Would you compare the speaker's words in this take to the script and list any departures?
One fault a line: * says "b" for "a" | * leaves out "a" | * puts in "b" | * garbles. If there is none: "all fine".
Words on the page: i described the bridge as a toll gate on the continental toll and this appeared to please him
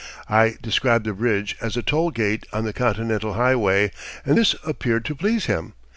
* says "highway" for "toll"